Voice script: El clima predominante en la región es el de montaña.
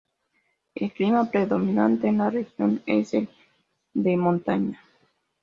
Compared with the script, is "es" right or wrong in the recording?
right